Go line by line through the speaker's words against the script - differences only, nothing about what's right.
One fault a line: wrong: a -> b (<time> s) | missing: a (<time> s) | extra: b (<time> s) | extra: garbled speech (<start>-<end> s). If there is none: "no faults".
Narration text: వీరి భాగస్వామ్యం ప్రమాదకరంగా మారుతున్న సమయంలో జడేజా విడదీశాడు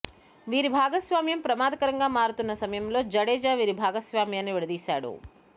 extra: వీరి భాగస్వామ్యాన్ని (3.5 s)